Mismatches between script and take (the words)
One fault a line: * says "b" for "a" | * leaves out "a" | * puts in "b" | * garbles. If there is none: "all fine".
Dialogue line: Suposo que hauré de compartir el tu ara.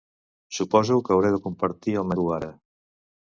all fine